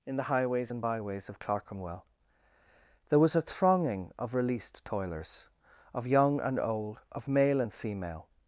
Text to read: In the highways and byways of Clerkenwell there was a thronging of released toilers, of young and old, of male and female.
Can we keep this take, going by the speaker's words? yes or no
yes